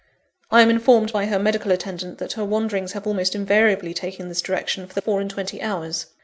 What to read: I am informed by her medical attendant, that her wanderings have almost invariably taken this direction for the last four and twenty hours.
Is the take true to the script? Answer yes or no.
no